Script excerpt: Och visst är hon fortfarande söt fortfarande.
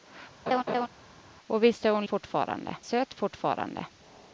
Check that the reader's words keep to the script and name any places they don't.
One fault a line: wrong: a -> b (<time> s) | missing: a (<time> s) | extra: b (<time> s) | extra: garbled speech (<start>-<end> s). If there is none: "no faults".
no faults